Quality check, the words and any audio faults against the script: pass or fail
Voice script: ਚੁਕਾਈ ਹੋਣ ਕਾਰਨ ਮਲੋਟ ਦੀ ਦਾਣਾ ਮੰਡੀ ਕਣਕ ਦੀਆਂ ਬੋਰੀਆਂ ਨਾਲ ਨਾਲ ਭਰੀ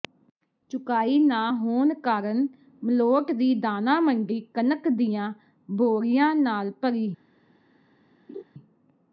fail